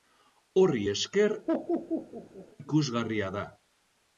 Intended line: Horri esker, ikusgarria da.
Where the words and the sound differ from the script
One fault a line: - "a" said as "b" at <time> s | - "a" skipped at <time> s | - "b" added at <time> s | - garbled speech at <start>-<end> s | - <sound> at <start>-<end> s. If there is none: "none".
- laugh at 1.5-2.5 s